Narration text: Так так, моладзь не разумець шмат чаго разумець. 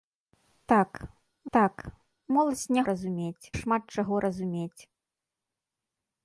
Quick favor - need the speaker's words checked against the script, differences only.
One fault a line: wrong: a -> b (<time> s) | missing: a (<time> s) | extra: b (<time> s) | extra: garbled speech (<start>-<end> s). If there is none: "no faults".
no faults